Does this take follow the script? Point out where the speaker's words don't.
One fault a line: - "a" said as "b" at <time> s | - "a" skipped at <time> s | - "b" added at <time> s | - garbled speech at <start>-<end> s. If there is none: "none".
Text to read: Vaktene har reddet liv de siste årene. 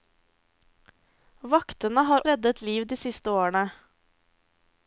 none